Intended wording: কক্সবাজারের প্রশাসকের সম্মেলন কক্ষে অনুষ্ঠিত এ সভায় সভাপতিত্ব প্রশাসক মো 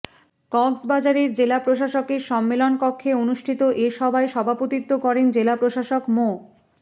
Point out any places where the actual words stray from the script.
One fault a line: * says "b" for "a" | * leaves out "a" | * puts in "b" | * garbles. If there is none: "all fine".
* puts in "জেলা"
* puts in "করেন জেলা"